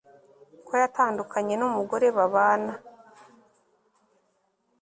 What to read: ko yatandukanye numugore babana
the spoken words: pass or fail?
pass